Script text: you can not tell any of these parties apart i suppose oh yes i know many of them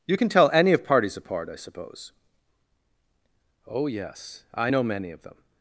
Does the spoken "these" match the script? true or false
false